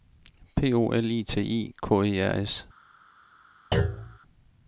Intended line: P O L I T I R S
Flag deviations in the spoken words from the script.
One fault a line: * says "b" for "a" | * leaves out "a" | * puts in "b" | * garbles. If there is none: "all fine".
* puts in "K E"